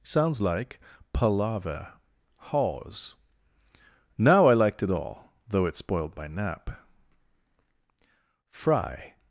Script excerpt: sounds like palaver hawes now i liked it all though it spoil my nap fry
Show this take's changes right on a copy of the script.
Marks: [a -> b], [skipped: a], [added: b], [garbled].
sounds like palaver hawes now i liked it all though it [spoil -> spoiled] my nap fry